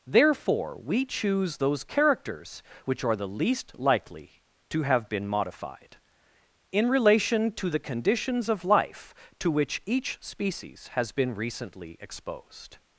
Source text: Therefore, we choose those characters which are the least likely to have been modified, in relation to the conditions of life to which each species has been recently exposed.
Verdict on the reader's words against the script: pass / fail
pass